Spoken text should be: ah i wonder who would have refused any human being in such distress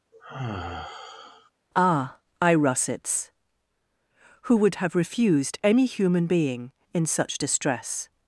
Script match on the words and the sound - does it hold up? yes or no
no